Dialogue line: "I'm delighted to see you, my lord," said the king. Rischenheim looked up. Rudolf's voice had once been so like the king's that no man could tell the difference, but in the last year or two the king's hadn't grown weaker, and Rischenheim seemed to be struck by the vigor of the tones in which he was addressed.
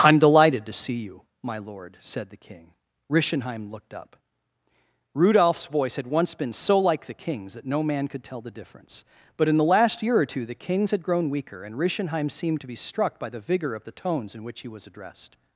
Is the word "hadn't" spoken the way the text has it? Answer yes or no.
no